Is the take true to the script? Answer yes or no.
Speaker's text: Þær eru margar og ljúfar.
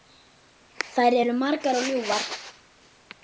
yes